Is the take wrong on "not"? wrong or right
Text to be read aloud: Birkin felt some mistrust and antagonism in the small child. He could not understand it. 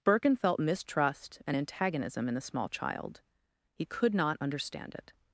right